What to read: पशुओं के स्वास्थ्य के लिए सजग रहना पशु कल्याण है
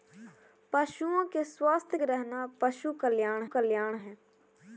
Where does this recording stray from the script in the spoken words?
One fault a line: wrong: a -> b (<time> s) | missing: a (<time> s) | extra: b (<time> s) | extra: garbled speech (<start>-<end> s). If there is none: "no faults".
missing: के लिए सजग (2.0 s)
extra: कल्याण (3.4 s)